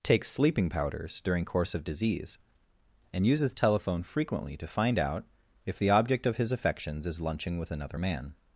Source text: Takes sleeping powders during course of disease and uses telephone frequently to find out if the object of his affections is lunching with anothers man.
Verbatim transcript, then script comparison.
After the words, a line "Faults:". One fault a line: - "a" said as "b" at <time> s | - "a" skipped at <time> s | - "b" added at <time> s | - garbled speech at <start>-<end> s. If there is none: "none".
Takes sleeping powders during course of disease and uses telephone frequently to find out if the object of his affections is lunching with another man.
Faults:
- "anothers" said as "another" at 7.7 s